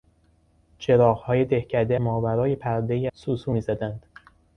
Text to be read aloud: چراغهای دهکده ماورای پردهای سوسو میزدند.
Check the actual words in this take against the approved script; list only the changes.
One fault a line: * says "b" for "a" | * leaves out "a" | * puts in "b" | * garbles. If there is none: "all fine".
all fine